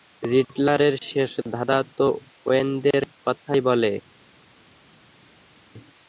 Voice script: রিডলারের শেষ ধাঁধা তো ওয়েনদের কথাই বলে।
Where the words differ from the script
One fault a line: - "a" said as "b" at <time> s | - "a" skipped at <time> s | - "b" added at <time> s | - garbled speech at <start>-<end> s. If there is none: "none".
none